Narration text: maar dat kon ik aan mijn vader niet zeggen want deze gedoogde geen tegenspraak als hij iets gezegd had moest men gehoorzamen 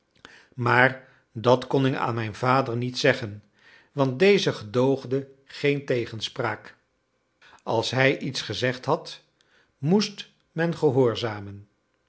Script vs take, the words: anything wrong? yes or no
no